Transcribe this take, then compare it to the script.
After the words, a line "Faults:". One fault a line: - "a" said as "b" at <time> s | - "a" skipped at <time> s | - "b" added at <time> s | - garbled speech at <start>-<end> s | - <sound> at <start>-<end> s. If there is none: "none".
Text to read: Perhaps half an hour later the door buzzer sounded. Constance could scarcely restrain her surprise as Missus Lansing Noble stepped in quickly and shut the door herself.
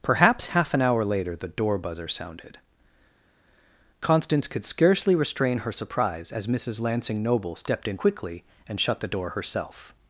Perhaps half an hour later the door buzzer sounded. Constance could scarcely restrain her surprise as Missus Lansing Noble stepped in quickly and shut the door herself.
Faults:
none